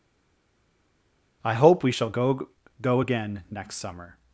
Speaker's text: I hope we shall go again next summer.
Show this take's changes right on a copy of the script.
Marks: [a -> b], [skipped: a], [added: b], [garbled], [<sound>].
I hope we shall go [added: go] again next summer.